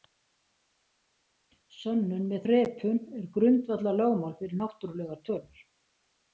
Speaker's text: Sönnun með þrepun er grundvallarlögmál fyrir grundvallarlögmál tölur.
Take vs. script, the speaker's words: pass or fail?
fail